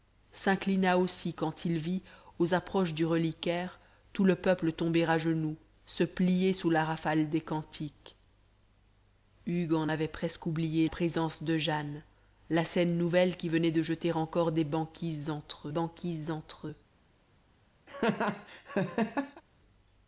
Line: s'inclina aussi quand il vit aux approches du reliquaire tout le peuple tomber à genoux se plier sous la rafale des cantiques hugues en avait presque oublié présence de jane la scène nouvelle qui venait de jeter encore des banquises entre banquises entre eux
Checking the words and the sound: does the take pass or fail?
fail